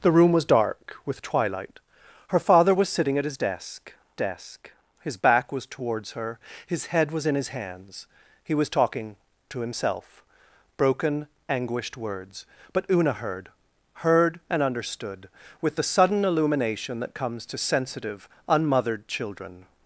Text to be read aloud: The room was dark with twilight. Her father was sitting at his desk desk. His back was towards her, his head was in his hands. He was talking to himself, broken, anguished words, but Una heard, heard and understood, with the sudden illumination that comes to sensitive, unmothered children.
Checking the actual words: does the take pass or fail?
pass